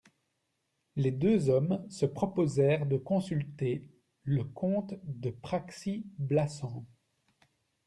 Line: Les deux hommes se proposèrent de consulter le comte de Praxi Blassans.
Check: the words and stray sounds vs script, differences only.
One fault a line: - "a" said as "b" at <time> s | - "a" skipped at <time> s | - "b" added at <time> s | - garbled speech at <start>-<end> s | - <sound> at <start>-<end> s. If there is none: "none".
none